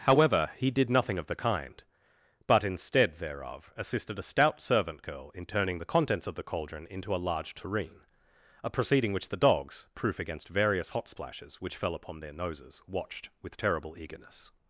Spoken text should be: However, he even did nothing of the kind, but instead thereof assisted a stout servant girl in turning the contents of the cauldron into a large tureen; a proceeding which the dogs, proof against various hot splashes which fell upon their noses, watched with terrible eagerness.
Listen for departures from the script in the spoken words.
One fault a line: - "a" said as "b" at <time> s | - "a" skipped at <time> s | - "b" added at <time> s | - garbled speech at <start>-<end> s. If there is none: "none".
- "even" skipped at 0.7 s